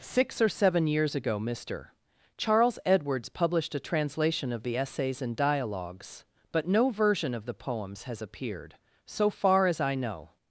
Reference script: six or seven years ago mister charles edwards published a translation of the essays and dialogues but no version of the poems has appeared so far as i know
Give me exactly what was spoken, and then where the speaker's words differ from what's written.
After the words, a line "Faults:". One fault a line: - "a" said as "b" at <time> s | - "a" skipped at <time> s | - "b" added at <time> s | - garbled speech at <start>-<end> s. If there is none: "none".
six or seven years ago mister charles edwards published a translation of the essays and dialogues but no version of the poems has appeared so far as i know
Faults:
none